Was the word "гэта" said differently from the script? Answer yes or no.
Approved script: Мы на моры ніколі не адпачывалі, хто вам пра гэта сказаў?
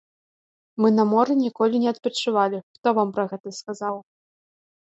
no